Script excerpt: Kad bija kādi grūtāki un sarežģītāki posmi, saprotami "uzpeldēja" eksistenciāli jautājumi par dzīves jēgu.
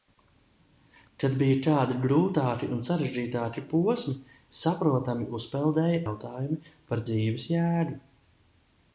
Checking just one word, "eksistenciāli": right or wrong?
wrong